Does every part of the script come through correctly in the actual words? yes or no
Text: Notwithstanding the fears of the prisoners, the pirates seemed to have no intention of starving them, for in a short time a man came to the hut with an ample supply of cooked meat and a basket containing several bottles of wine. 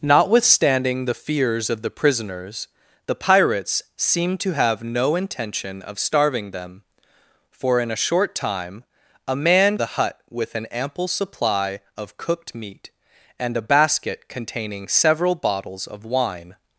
no